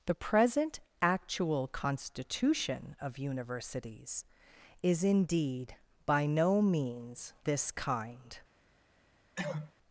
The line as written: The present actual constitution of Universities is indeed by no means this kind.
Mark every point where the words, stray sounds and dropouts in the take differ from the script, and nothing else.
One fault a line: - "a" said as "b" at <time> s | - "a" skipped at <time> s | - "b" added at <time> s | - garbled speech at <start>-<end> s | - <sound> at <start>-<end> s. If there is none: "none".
- cough at 9.4-9.7 s